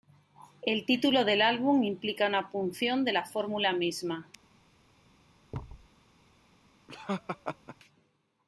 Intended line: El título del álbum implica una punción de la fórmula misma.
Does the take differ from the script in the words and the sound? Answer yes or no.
yes